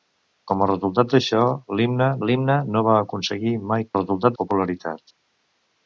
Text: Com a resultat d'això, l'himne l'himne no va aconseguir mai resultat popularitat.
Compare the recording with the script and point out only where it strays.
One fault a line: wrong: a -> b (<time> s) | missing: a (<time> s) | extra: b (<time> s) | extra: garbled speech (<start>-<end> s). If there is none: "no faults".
no faults